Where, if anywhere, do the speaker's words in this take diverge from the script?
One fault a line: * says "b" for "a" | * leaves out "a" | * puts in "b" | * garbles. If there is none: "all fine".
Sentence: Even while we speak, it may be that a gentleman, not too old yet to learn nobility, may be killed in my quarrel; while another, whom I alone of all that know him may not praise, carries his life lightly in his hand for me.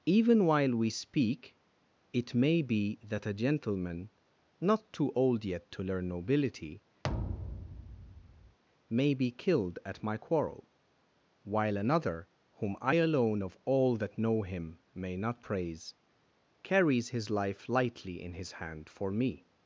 * says "at" for "in"